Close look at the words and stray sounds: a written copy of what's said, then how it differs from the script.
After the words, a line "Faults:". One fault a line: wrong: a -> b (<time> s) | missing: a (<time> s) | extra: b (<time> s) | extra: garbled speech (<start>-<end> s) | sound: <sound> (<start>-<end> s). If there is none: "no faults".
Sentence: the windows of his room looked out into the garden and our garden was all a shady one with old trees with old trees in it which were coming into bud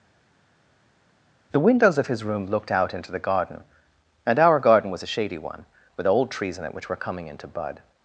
the windows of his room looked out into the garden and our garden was a shady one with old trees in it which were coming into bud
Faults:
missing: all (5.0 s)
missing: with old trees (6.6 s)